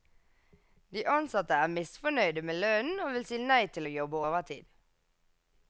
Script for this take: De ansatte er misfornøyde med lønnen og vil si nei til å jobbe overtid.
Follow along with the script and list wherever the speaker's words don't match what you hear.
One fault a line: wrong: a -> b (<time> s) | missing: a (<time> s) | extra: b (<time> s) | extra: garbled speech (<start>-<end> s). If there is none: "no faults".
no faults